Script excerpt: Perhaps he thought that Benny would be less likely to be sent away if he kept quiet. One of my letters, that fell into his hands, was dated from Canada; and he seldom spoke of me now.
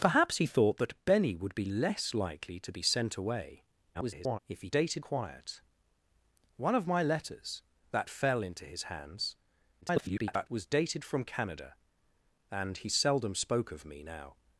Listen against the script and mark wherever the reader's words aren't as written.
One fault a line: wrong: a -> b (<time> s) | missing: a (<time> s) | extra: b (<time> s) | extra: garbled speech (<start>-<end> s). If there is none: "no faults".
extra: garbled speech (3.9-4.4 s)
wrong: kept -> dated (4.7 s)
extra: garbled speech (9.8-10.5 s)